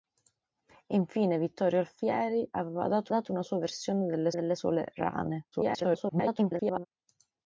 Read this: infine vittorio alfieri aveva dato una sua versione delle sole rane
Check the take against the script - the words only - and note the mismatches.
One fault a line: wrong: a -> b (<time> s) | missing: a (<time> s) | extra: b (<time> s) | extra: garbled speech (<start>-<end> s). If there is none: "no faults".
extra: dato (3.1 s)
extra: delle (4.3 s)
extra: garbled speech (5.5-6.9 s)